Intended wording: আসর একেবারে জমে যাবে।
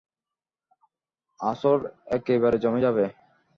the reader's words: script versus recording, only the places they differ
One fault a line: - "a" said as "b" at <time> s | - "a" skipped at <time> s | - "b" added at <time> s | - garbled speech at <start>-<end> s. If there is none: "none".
none